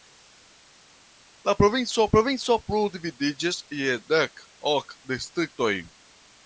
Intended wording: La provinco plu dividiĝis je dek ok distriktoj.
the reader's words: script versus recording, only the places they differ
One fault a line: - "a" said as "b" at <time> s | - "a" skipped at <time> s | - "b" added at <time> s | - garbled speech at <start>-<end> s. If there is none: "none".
- "provinco" added at 2.1 s